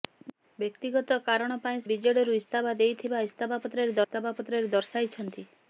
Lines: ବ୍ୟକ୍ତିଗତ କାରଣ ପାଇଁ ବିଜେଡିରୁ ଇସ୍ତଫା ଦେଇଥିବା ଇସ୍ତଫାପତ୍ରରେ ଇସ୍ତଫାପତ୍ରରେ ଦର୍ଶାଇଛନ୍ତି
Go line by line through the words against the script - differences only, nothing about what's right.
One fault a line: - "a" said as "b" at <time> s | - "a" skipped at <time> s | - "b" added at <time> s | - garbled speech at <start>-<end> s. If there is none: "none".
none